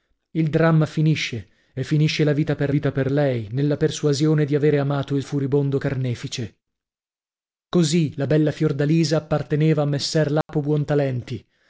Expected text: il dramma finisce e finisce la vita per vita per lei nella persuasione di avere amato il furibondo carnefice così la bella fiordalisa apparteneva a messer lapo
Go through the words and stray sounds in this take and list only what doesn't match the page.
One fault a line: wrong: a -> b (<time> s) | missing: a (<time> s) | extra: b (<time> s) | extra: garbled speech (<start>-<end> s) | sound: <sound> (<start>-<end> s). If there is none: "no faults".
sound: dropout (10.4-10.5 s)